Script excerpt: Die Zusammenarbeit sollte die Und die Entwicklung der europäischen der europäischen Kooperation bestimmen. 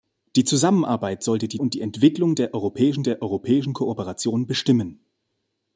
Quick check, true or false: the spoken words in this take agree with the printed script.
true